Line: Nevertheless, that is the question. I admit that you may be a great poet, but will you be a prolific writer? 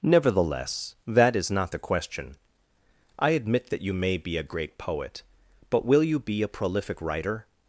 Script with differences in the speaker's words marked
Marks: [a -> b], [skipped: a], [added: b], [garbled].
Nevertheless, that is [added: not] the question. I admit that you may be a great poet, but will you be a prolific writer?